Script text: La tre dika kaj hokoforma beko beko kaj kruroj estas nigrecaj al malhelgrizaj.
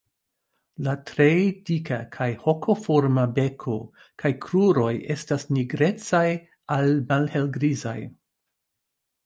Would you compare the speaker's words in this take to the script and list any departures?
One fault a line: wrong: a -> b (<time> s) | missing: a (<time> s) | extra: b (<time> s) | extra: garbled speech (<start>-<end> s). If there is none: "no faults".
missing: beko (3.8 s)